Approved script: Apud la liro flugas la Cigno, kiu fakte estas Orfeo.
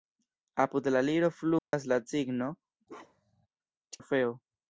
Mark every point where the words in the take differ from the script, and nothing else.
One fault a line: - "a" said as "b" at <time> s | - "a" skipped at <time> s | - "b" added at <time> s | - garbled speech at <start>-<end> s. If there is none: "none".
- "kiu fakte estas" skipped at 2.5 s